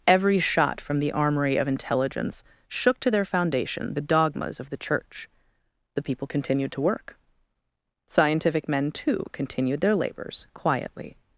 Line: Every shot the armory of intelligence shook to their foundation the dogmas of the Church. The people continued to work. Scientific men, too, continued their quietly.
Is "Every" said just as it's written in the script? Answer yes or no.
yes